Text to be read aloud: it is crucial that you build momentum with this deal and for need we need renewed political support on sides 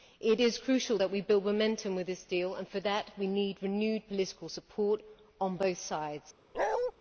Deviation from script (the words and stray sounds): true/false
true